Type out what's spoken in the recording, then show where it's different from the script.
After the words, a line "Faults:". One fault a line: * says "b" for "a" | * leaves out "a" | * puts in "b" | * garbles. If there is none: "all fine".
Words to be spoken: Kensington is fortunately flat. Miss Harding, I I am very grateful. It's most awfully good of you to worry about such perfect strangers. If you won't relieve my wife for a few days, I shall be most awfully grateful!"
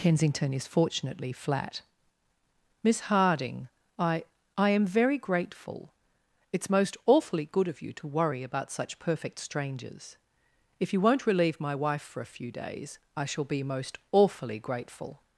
Kensington is fortunately flat. Miss Harding, I I am very grateful. It's most awfully good of you to worry about such perfect strangers. If you won't relieve my wife for a few days, I shall be most awfully grateful!"
Faults:
all fine